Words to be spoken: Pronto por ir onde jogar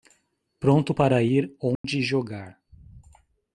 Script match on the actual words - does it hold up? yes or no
no